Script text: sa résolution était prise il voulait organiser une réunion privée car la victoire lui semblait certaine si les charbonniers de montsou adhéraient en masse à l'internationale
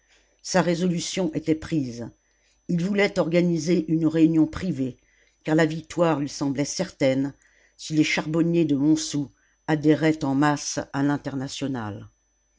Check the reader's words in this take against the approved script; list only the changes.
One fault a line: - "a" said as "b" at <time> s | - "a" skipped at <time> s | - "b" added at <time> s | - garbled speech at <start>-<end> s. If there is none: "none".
none